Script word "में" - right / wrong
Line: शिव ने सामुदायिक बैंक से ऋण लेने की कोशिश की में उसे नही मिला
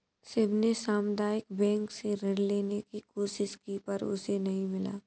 wrong